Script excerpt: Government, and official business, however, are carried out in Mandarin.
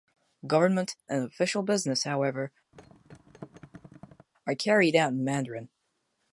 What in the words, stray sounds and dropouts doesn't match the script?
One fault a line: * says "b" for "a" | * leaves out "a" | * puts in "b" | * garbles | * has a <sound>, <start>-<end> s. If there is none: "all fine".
* has a thud, 2.7-4.3 s